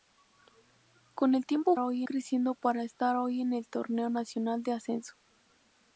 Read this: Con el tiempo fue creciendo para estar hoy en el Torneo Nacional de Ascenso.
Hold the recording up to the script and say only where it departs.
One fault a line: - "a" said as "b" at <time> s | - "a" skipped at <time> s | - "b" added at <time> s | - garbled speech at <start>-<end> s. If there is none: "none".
- "fue" said as "hoy" at 1.8 s